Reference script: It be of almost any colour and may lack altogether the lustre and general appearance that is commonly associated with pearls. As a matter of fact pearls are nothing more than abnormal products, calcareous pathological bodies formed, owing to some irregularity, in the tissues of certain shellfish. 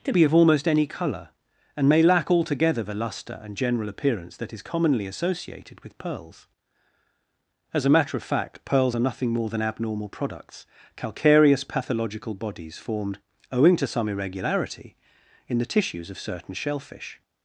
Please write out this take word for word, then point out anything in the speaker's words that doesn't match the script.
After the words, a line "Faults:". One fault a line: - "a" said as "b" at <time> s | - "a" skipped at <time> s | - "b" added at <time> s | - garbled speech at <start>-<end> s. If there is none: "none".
It be of almost any colour and may lack altogether the lustre and general appearance that is commonly associated with pearls. As a matter of fact pearls are nothing more than abnormal products, calcareous pathological bodies formed, owing to some irregularity, in the tissues of certain shellfish.
Faults:
none